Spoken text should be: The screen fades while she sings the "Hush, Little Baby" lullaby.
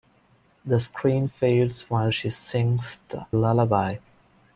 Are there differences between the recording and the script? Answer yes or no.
yes